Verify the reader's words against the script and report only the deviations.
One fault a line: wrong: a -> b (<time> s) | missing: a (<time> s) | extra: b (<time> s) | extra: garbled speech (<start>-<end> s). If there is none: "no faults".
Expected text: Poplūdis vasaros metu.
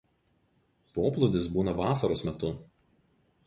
extra: būna (1.6 s)